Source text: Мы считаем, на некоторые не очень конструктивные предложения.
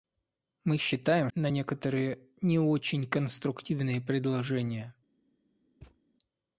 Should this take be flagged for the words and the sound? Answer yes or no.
yes